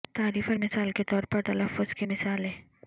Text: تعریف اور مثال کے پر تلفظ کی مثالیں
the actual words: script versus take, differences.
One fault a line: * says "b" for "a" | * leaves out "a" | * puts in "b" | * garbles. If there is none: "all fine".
* puts in "طور"